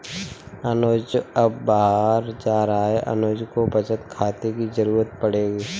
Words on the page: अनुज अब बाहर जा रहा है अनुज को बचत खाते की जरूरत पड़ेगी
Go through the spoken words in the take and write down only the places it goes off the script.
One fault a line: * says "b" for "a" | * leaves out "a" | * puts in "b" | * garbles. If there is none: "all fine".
all fine